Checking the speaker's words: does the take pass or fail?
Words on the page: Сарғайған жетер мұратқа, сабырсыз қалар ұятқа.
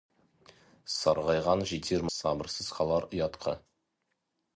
fail